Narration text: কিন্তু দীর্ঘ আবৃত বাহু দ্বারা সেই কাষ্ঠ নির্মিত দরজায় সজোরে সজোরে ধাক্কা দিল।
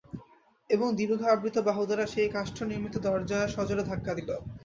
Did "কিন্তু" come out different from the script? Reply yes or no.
yes